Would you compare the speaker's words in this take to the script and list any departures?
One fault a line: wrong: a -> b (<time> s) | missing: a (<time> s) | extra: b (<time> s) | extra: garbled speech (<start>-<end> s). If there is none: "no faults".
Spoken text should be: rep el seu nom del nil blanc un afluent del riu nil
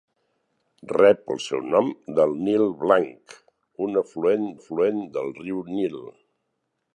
extra: afluent (4.6 s)